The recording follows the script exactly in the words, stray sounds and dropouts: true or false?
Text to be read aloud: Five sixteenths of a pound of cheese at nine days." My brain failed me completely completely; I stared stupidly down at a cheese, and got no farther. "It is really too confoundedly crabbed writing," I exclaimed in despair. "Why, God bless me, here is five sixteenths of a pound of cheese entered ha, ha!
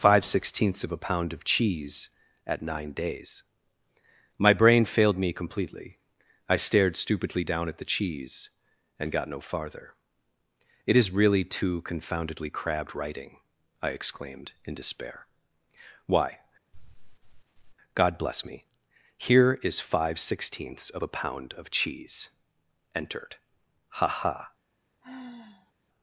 false